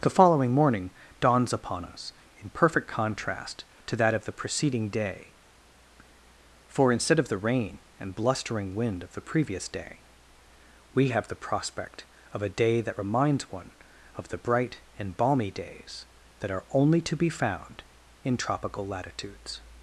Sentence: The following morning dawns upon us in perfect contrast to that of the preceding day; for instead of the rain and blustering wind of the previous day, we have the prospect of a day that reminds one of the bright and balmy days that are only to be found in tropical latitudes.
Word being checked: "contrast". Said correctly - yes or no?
yes